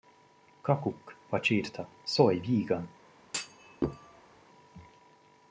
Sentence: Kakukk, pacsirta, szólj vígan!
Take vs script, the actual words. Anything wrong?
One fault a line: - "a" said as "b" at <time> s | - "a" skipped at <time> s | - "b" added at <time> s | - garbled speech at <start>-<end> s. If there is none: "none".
none